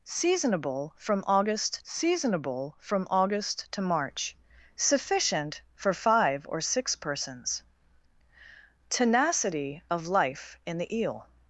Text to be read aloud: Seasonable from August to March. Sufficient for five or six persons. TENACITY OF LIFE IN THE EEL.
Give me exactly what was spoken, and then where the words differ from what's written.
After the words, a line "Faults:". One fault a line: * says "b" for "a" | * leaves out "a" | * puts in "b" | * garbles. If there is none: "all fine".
Seasonable from August seasonable from August to March. Sufficient for five or six persons. TENACITY OF LIFE IN THE EEL.
Faults:
* puts in "seasonable from August"